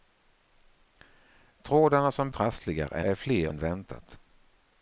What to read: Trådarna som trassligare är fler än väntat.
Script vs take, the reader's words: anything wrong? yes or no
no